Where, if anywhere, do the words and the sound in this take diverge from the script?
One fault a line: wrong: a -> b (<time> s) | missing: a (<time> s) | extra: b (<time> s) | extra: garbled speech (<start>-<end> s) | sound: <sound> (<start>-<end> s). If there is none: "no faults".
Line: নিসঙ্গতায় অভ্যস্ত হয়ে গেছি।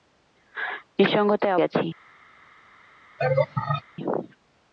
missing: অভ্যস্ত হয়ে (1.6 s)
sound: laugh (3.2-3.8 s)